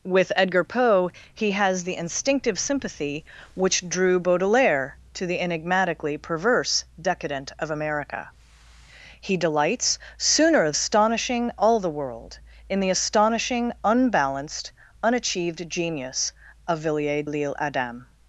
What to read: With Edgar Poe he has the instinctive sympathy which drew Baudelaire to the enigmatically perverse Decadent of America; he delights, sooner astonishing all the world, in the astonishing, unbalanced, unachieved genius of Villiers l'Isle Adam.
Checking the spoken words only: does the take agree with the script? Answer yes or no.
yes